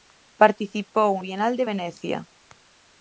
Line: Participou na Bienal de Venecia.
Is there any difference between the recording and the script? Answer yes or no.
yes